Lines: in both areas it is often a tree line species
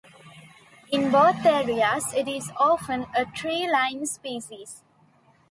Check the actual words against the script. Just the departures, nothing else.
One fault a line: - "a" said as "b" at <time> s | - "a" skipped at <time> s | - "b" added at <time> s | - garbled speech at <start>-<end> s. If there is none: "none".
none